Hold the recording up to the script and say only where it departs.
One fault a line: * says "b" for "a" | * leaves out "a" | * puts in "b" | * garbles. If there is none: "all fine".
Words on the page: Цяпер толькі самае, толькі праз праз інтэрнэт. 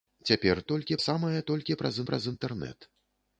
all fine